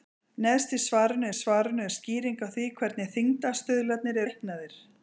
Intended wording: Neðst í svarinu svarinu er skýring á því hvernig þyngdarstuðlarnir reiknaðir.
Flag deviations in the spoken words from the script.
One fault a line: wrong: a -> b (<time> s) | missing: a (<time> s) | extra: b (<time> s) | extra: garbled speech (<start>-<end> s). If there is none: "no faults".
no faults